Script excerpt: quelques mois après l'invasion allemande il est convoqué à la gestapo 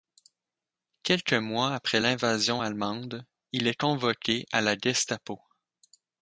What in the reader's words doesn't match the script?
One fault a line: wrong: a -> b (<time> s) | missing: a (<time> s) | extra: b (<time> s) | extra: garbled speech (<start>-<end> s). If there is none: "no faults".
no faults